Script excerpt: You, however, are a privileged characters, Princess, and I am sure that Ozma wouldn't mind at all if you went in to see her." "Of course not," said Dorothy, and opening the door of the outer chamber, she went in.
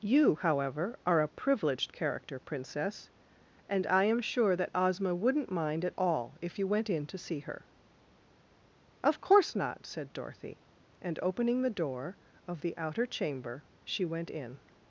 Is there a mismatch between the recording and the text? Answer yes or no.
yes